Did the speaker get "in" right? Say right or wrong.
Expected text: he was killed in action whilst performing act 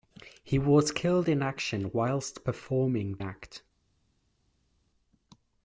right